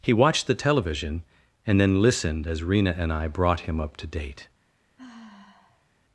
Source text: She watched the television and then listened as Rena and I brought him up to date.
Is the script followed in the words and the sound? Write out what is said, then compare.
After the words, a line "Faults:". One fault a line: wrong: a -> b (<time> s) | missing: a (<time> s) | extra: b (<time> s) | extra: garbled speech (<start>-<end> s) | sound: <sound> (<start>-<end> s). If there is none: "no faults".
He watched the television and then listened as Rena and I brought him up to date.
Faults:
wrong: She -> He (0.0 s)
sound: sigh (5.0-5.9 s)